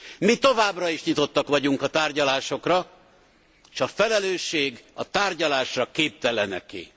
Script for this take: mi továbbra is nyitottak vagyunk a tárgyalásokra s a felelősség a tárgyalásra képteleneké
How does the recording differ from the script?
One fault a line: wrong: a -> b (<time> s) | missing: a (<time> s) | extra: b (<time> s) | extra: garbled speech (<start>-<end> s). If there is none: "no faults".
no faults